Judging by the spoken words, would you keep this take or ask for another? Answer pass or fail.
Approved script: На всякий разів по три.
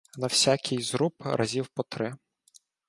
fail